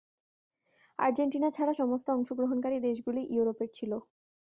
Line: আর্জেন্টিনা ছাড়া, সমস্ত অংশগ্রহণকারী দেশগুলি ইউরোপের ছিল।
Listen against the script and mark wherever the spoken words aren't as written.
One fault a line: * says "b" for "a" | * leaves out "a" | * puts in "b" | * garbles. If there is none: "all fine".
all fine